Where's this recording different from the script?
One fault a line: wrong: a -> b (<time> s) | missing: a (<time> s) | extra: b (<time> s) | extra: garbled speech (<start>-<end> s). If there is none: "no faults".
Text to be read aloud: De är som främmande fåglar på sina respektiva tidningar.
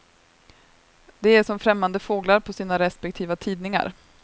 no faults